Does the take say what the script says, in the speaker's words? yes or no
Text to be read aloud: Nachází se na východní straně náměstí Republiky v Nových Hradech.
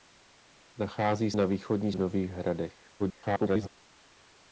no